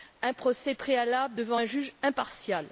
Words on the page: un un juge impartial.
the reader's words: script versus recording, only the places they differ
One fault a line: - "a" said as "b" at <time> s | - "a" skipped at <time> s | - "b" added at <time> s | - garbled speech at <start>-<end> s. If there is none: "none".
- "procès préalable devant" added at 0.3 s